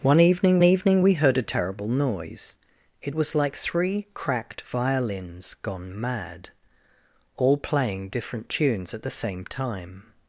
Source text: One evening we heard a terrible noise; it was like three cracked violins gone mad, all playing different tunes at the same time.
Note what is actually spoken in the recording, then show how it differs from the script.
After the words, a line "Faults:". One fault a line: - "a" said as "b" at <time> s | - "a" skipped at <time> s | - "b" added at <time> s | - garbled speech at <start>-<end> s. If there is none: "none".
One evening evening we heard a terrible noise; it was like three cracked violins gone mad, all playing different tunes at the same time.
Faults:
- "evening" added at 0.6 s